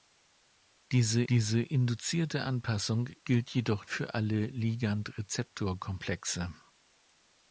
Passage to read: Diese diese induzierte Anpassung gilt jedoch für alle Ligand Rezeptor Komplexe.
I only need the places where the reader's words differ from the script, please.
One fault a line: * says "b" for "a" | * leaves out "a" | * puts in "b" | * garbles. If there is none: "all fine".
all fine